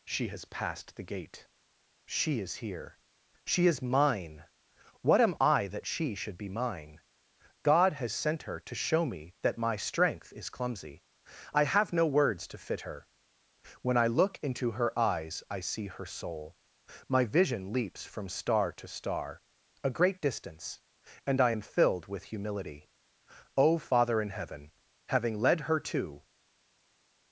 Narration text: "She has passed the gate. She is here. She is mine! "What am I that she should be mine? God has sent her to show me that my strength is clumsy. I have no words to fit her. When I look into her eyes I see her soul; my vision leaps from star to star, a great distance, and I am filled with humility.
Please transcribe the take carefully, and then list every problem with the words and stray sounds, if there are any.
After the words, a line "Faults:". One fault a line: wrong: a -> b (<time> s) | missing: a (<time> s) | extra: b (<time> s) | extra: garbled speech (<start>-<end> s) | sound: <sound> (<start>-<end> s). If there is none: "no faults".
"She has passed the gate. She is here. She is mine! "What am I that she should be mine? God has sent her to show me that my strength is clumsy. I have no words to fit her. When I look into her eyes I see her soul; my vision leaps from star to star, a great distance, and I am filled with humility. O Father in Heaven, having led her to
Faults:
extra: O Father in Heaven having led her to (23.6 s)